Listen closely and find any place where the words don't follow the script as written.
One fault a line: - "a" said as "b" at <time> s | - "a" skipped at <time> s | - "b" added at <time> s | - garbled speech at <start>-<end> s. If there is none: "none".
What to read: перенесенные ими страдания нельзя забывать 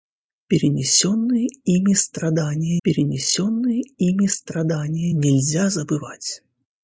- "перенесенные ими страдания" added at 2.8 s